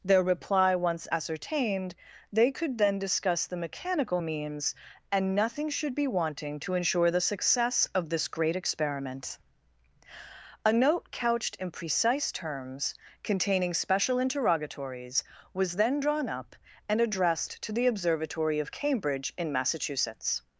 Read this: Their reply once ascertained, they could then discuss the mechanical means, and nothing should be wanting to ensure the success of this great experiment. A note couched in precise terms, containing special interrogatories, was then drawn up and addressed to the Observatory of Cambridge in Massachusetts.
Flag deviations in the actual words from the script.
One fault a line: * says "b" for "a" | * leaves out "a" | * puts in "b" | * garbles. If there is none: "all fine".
all fine